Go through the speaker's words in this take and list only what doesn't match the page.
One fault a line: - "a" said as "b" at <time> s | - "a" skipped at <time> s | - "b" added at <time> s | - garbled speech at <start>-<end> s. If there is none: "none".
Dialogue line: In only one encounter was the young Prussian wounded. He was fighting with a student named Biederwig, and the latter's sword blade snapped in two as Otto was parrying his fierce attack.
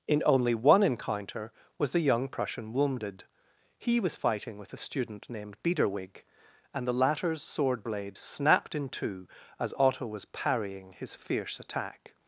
none